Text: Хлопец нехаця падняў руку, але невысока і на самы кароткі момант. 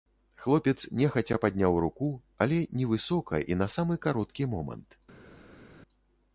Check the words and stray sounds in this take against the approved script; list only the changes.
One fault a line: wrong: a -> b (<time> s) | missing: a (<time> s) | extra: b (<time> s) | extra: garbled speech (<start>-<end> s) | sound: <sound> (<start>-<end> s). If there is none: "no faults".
no faults